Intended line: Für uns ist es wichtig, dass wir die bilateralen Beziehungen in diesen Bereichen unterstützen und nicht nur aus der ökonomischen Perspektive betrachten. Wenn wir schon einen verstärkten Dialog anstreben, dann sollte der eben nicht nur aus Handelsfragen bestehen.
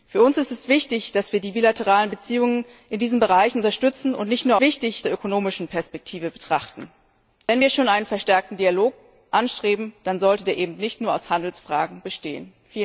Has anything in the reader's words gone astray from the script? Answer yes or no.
yes